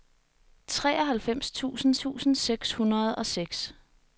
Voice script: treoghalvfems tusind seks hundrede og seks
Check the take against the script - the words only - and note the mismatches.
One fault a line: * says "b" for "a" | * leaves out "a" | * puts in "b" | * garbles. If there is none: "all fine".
* puts in "tusind"